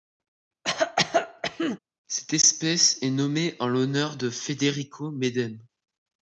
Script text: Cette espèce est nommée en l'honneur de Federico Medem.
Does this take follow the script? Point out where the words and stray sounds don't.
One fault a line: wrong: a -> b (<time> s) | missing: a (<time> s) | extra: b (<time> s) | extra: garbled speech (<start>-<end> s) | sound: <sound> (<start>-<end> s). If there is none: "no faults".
sound: cough (0.6-1.8 s)